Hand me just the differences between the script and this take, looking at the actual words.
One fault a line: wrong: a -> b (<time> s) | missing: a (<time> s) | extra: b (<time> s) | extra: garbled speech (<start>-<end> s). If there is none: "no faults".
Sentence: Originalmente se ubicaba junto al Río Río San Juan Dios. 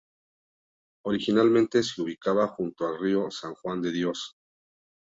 missing: Río (3.3 s)
extra: de (3.8 s)